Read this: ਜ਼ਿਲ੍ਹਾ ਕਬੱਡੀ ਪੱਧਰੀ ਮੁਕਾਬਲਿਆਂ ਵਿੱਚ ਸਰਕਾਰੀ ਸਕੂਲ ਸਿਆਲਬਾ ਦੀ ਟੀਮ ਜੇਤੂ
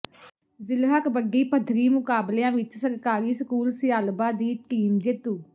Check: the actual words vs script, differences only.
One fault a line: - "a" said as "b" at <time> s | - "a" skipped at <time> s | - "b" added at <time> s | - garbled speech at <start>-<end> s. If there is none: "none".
none